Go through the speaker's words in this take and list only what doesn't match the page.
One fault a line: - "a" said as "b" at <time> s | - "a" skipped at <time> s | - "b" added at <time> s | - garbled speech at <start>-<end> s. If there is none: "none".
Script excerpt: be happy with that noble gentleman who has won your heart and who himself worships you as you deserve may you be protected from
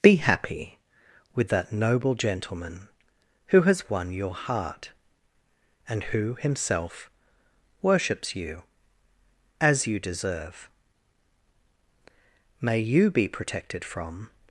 none